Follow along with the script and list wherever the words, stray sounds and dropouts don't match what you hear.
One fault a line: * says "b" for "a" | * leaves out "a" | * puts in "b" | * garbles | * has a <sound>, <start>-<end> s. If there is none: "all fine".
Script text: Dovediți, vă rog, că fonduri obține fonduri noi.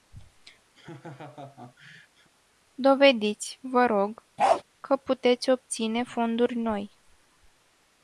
* has a laugh, 0.7-2.3 s
* has a bark, 4.4-4.6 s
* says "puteți" for "fonduri"